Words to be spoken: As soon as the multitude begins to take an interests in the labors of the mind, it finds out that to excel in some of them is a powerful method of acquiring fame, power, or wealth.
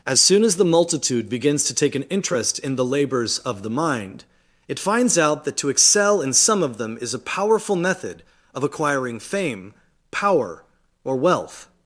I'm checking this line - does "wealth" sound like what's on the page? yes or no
yes